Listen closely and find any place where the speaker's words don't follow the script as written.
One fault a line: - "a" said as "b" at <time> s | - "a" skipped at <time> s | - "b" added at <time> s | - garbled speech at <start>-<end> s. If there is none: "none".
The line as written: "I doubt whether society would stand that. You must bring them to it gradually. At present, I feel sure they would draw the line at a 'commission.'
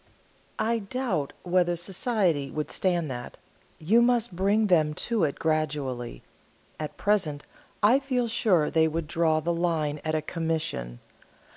none